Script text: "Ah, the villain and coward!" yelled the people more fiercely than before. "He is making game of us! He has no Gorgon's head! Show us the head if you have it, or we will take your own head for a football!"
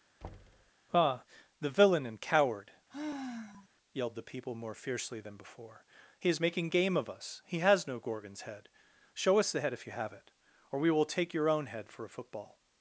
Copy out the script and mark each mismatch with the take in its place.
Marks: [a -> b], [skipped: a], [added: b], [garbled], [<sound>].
[thud] "Ah, the villain and coward!" [sigh] yelled the people more fiercely than before. "He is making game of us! He has no Gorgon's head! Show us the head if you have it, or we will take your own head for a football!"